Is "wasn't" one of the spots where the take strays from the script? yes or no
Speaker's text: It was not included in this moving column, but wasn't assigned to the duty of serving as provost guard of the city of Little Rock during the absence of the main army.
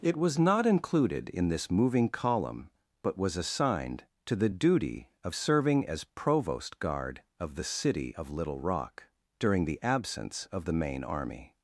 yes